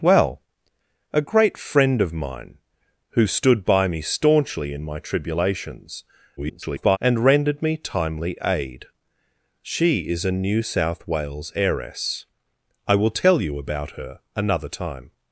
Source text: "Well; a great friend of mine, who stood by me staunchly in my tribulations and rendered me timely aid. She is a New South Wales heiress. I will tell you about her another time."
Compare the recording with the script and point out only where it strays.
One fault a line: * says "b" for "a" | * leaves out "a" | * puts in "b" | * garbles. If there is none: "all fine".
* garbles